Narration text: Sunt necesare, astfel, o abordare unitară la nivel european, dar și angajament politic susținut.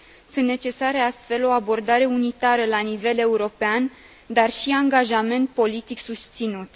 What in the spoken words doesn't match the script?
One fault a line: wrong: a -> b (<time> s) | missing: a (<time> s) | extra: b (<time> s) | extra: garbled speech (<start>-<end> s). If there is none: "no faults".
no faults